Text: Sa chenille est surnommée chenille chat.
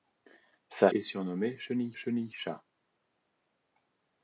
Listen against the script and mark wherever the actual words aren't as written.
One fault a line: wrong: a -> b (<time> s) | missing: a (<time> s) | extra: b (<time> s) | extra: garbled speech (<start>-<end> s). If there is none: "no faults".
missing: chenille (0.9 s)
extra: chenille (1.9 s)